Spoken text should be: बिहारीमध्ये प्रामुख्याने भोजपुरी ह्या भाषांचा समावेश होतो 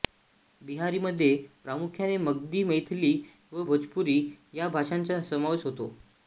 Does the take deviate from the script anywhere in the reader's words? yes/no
yes